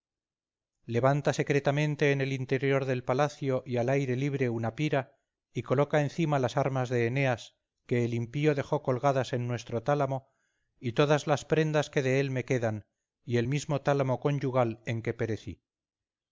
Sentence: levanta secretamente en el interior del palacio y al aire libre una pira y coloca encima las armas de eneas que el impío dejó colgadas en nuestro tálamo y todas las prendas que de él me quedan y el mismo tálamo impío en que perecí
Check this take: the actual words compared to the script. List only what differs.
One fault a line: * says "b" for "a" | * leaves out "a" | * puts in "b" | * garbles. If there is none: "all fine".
* says "conyugal" for "impío"